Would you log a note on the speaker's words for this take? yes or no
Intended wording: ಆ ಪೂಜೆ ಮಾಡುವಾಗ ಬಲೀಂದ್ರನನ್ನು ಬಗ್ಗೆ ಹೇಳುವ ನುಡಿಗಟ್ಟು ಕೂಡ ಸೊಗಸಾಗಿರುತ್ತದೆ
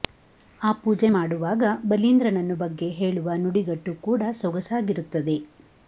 no